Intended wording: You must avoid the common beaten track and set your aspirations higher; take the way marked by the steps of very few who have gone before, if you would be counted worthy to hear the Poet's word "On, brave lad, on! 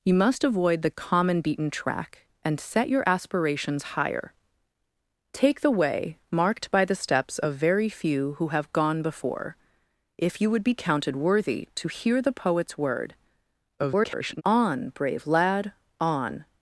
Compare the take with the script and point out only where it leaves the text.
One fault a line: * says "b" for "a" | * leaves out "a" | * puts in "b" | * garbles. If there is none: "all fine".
* garbles